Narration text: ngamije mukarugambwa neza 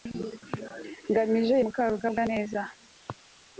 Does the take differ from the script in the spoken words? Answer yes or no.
no